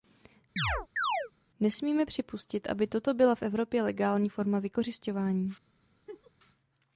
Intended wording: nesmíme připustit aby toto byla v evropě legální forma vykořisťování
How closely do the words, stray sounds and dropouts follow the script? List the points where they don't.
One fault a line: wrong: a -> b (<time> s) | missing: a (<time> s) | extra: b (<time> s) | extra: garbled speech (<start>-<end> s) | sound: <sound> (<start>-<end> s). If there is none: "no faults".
sound: chirp (0.6-1.3 s)
sound: laugh (6.1-6.3 s)